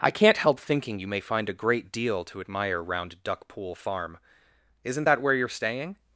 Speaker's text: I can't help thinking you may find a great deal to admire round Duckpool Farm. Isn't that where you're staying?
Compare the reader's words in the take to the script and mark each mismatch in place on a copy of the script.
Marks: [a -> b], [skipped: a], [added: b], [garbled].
I can't help thinking you may find a great deal to admire round Duckpool Farm. Isn't that where you're staying?